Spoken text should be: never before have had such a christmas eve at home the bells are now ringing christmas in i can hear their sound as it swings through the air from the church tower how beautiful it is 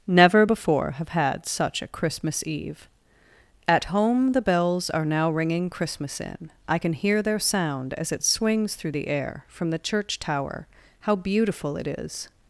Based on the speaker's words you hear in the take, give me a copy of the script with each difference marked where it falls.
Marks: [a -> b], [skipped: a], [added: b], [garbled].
never before have had such a christmas eve at home the bells are now ringing christmas in i can hear their sound as it swings through the air from the church tower how beautiful it is